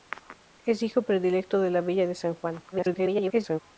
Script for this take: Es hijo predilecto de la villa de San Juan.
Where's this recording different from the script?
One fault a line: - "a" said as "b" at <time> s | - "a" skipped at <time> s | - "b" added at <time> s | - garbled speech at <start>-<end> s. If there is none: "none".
- garbled speech at 2.7-3.6 s